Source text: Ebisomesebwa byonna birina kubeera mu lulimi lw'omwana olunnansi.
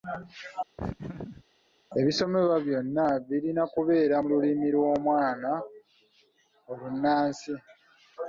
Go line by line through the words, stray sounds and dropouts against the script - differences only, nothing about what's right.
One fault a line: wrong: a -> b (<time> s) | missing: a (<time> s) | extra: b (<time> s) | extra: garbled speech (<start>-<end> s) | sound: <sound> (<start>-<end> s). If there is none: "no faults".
sound: laugh (0.8-1.4 s)